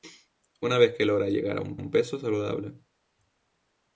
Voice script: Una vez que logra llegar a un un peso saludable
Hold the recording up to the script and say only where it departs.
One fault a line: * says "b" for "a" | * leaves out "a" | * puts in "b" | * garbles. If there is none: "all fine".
all fine